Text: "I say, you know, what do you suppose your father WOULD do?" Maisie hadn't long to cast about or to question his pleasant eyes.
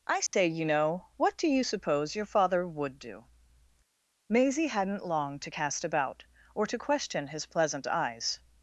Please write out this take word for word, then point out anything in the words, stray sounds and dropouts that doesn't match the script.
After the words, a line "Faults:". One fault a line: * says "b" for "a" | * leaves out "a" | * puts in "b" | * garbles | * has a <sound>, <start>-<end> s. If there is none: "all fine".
"I say, you know, what do you suppose your father WOULD do?" Maisie hadn't long to cast about or to question his pleasant eyes.
Faults:
* has a dropout, 0.3-0.3 s